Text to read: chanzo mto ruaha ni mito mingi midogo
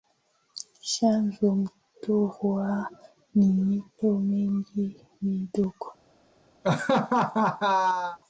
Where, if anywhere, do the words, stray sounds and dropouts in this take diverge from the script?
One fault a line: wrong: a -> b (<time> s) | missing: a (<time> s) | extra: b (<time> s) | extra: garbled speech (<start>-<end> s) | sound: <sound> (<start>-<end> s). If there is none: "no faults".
sound: laugh (6.6-8.2 s)